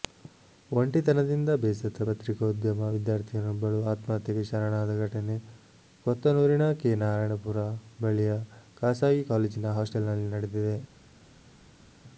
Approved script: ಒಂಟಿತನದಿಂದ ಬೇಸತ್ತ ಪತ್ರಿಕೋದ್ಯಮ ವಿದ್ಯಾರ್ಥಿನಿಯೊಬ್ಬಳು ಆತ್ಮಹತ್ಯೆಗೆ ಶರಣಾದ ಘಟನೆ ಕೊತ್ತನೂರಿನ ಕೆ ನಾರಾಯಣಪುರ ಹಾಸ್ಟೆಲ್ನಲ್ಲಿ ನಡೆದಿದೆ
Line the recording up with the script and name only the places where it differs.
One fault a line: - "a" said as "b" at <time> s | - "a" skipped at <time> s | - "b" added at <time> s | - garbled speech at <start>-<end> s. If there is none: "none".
- "ಬಳಿಯ ಖಾಸಗಿ ಕಾಲೇಜಿನ" added at 8.0 s